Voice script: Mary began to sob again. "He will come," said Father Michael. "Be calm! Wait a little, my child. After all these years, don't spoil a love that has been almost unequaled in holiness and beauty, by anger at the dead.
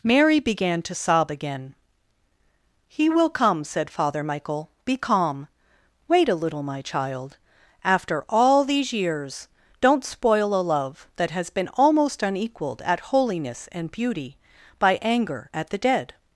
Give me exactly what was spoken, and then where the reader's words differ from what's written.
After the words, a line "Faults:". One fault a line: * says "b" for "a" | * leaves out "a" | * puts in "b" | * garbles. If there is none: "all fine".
Mary began to sob again. "He will come," said Father Michael. "Be calm! Wait a little, my child. After all these years, don't spoil a love that has been almost unequaled at holiness and beauty, by anger at the dead.
Faults:
* says "at" for "in"